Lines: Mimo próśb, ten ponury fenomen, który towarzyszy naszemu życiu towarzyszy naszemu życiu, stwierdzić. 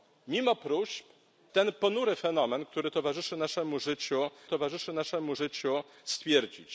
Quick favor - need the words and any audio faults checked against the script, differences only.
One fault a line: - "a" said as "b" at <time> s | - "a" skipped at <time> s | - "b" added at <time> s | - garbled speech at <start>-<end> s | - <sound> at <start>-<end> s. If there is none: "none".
none